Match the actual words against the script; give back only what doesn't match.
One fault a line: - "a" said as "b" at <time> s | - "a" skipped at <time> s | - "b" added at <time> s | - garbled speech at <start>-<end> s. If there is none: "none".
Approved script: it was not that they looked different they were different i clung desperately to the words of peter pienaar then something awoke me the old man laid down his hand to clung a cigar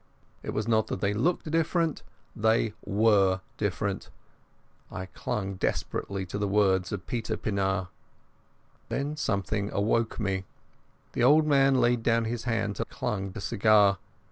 none